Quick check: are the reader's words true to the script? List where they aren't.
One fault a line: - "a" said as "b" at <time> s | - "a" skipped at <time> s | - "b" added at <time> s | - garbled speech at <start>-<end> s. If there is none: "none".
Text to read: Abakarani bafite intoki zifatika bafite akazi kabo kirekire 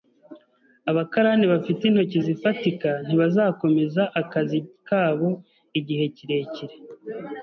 - "bafite" said as "ntibazakomeza" at 3.0 s
- "igihe" added at 5.8 s